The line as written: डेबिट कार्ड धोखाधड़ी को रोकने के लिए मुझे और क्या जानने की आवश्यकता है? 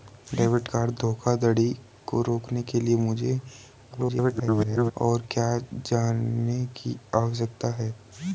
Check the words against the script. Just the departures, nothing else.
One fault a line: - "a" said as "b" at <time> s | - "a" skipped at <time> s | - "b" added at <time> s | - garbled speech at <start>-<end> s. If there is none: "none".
- garbled speech at 3.9-4.9 s